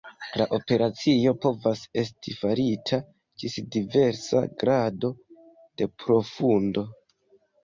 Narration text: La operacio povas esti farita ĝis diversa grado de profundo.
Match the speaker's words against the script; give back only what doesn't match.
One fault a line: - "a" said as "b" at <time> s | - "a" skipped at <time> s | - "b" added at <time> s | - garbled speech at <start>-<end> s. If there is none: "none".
none